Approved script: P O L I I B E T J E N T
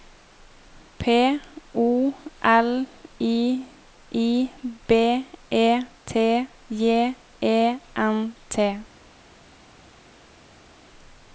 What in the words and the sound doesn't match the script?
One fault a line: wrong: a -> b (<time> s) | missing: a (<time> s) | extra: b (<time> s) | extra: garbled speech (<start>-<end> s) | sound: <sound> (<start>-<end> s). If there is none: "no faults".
no faults